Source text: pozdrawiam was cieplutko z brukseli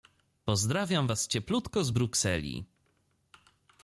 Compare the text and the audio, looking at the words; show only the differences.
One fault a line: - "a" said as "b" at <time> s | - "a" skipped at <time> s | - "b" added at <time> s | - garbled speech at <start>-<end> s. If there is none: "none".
none